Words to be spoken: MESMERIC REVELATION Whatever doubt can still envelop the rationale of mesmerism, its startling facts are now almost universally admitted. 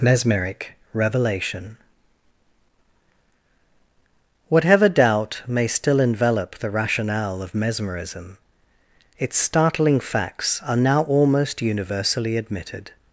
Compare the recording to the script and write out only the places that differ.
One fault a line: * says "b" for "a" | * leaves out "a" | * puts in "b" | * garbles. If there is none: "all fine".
* says "may" for "can"